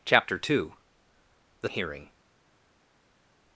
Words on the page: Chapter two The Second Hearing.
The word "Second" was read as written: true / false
false